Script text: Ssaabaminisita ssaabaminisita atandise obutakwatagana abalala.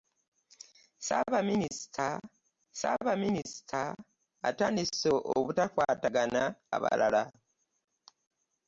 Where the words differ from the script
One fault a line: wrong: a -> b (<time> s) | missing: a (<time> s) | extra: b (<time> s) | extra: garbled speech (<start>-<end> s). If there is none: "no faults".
no faults